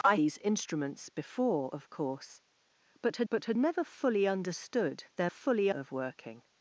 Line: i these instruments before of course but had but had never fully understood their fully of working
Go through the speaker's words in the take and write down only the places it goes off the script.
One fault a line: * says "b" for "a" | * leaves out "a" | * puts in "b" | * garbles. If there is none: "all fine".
all fine